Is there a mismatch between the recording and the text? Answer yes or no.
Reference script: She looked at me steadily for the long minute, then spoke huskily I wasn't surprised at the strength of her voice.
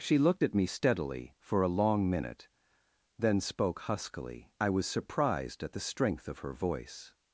yes